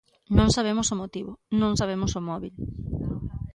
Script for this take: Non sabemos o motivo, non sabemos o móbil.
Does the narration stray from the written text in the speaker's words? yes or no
no